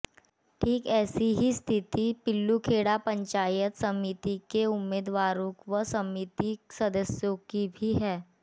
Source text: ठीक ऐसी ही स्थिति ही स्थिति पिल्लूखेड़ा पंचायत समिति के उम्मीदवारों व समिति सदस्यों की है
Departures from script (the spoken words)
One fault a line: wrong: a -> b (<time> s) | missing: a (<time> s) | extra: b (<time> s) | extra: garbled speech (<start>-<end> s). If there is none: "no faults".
missing: ही स्थिति (2.0 s)
extra: भी (7.8 s)